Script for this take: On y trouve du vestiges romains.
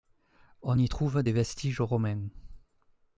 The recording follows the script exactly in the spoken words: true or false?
false